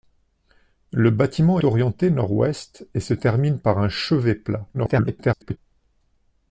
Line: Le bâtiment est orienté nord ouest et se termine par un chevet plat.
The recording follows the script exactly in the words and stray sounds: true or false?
false